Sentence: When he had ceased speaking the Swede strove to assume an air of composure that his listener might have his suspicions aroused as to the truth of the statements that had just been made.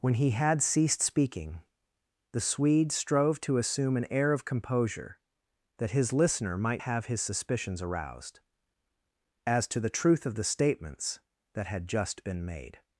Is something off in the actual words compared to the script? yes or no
no